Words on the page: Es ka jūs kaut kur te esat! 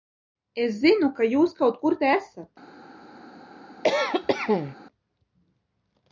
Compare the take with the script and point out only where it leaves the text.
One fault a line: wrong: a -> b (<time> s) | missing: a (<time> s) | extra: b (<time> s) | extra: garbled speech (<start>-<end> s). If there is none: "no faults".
extra: zinu (0.8 s)